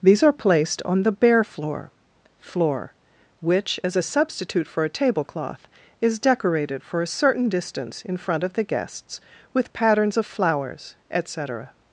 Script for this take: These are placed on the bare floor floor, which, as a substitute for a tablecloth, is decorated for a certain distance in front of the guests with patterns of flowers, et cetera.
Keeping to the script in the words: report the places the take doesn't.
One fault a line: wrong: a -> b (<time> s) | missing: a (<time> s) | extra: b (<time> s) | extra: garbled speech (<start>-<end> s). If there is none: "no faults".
no faults